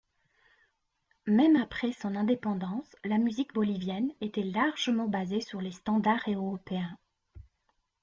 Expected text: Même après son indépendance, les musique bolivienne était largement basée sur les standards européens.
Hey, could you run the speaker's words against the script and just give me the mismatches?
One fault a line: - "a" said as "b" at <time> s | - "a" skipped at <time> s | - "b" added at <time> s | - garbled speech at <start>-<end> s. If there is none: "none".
- "les" said as "la" at 3.0 s